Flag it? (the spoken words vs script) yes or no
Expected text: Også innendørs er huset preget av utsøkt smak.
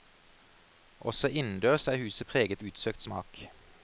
yes